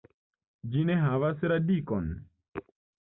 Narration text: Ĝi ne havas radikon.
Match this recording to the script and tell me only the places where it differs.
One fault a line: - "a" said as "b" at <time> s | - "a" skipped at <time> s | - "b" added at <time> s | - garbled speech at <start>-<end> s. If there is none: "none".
none